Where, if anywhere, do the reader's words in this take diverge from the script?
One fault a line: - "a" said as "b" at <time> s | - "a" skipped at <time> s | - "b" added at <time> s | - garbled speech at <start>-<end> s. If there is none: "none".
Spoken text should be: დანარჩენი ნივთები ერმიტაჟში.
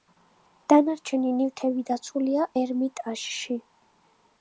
- "დაცულია" added at 1.9 s